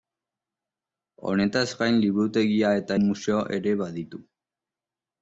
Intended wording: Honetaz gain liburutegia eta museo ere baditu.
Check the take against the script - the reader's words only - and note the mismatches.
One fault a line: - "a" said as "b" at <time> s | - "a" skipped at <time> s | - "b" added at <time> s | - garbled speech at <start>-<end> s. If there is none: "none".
none